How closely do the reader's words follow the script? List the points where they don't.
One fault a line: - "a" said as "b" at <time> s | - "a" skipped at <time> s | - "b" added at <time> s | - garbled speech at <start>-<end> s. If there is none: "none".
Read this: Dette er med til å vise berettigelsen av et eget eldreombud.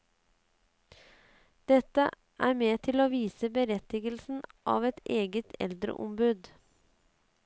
none